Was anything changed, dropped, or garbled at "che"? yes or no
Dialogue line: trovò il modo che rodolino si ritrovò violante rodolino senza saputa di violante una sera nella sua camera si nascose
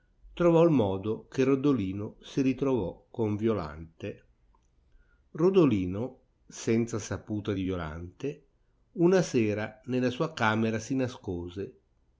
no